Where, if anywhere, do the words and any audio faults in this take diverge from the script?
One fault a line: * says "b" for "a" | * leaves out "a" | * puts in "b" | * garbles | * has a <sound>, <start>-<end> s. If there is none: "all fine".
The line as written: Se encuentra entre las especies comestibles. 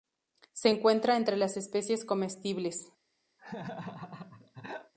* has a laugh, 3.4-4.9 s